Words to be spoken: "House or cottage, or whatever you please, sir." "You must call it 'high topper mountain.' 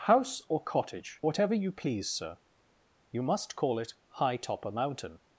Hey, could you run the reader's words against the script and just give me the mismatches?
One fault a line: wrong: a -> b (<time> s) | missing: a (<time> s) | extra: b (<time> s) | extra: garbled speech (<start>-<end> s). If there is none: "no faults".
missing: or (1.2 s)